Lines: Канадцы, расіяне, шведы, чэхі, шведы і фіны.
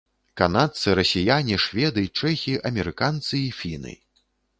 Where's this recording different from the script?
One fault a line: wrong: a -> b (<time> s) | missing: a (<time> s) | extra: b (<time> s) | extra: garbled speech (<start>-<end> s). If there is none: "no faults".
wrong: шведы -> амерыканцы (2.7 s)